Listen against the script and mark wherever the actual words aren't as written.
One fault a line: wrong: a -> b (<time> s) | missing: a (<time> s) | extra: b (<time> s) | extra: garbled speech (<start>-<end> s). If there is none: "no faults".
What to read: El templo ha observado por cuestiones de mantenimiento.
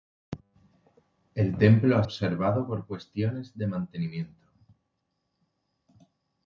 no faults